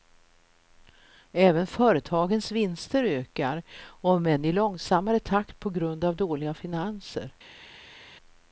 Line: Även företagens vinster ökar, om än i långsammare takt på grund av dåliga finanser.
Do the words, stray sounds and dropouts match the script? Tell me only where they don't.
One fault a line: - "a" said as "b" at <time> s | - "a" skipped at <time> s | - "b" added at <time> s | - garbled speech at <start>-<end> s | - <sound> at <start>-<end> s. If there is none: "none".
none